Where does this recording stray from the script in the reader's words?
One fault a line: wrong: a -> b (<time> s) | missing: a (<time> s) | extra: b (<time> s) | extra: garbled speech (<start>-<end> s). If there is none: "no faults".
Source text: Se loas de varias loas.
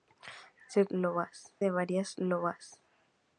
no faults